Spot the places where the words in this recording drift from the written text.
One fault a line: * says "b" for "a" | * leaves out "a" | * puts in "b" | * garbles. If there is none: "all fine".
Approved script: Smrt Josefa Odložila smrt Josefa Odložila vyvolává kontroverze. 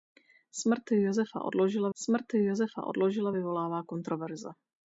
all fine